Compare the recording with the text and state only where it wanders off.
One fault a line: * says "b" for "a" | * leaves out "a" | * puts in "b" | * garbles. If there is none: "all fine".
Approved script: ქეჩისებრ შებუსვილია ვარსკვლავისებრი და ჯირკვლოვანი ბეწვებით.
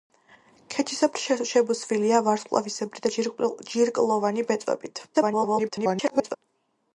* garbles